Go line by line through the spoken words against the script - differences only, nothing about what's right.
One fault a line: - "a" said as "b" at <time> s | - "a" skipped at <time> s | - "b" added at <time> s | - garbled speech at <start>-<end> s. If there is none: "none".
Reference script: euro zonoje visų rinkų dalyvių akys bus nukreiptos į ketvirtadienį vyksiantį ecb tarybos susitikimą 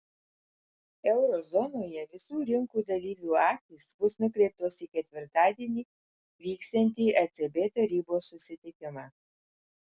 none